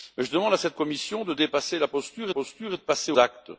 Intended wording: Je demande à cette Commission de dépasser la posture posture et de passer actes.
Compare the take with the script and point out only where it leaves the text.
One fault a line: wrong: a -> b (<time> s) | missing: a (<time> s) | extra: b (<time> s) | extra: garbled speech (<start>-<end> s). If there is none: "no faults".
no faults